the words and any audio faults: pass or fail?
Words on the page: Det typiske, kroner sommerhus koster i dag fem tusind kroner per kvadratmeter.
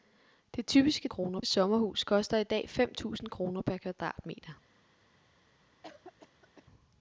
fail